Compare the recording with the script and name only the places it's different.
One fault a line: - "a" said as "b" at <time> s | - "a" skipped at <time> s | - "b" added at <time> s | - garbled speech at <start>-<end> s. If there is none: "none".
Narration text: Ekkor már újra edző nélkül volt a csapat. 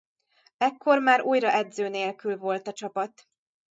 none